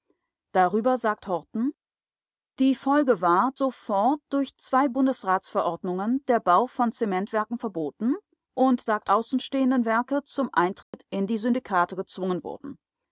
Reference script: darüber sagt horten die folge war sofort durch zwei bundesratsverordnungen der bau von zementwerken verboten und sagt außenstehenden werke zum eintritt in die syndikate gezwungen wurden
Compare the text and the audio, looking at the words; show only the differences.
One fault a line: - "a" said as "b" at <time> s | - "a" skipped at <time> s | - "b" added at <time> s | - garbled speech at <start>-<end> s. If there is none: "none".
none